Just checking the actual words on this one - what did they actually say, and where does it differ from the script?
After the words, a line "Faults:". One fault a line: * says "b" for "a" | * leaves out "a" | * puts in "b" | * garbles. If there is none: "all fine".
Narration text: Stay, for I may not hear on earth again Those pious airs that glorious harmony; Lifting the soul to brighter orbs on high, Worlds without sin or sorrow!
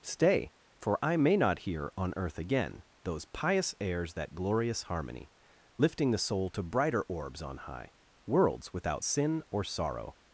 Stay, for I may not hear on earth again Those pious airs that glorious harmony; Lifting the soul to brighter orbs on high, Worlds without sin or sorrow!
Faults:
all fine